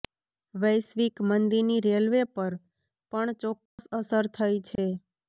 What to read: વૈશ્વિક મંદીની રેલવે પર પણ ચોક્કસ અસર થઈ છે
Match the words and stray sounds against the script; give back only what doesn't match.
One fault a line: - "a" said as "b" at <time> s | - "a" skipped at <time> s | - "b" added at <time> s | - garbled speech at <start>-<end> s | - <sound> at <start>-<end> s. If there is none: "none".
- dropout at 3.7-3.8 s
- dropout at 4.8-4.8 s